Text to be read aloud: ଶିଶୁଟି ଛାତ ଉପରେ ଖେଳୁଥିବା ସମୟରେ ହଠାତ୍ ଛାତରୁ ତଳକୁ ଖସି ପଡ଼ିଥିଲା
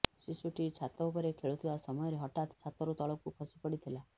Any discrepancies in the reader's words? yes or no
no